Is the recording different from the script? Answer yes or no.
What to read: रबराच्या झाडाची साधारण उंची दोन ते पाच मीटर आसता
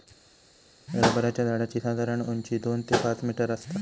no